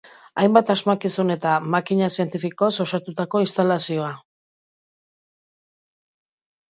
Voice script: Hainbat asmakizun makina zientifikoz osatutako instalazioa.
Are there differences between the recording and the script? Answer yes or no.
yes